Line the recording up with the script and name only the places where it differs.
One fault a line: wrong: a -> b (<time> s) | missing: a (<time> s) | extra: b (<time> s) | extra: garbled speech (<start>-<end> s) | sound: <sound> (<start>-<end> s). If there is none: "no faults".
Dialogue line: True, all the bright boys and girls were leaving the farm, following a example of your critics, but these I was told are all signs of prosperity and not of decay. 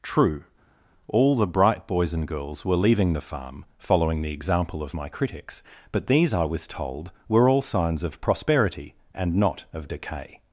wrong: a -> the (4.2 s)
wrong: your -> my (4.9 s)
wrong: are -> were (7.3 s)